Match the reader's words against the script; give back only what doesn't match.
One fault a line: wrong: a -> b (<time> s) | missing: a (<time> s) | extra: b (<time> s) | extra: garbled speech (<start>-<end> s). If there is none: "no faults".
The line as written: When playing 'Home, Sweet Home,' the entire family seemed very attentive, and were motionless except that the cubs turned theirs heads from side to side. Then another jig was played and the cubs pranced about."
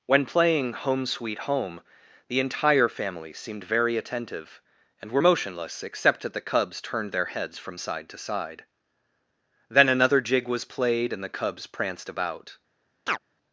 wrong: theirs -> their (7.1 s)